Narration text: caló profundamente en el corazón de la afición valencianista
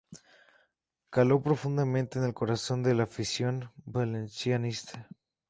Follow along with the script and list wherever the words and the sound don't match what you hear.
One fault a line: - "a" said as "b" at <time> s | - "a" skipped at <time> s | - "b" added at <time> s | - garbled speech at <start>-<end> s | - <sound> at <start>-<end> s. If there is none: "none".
none